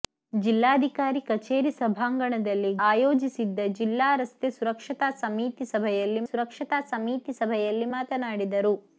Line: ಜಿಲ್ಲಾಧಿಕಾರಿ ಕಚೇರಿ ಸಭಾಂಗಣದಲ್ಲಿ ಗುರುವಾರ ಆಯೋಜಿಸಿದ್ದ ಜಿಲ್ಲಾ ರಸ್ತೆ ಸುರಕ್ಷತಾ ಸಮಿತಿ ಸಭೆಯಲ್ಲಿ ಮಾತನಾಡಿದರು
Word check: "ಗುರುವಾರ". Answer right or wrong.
wrong